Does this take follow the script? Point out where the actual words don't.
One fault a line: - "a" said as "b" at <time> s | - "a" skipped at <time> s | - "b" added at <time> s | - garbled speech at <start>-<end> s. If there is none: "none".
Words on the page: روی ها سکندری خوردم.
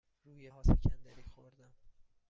none